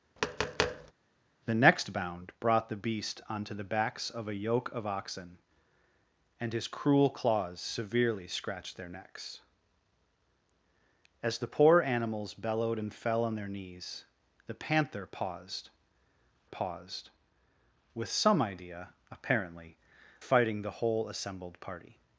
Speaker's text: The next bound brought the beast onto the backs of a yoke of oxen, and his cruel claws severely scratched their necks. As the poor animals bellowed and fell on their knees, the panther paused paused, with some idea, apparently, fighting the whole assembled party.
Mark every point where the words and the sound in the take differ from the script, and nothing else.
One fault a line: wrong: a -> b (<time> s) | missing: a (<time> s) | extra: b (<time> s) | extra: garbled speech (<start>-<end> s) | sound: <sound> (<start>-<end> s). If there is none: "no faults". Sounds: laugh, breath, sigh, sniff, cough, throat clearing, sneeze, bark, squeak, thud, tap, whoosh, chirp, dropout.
sound: tap (0.2-0.9 s)